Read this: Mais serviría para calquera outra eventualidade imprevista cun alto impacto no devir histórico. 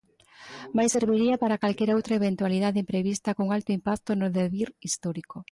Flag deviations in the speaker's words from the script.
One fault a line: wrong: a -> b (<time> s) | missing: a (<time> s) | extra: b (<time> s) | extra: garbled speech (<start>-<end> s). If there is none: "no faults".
no faults